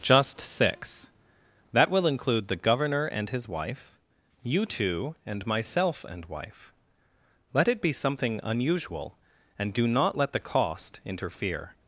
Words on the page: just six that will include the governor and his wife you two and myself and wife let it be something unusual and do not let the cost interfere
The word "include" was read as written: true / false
true